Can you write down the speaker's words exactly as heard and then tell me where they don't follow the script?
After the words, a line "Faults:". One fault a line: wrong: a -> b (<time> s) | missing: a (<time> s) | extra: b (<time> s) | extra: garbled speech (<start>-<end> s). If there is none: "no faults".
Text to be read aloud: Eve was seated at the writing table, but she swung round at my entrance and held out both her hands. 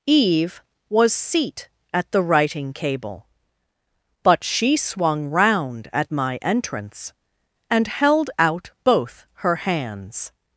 Eve was seat at the writing cable, but she swung round at my entrance and held out both her hands.
Faults:
wrong: seated -> seat (1.1 s)
wrong: table -> cable (2.7 s)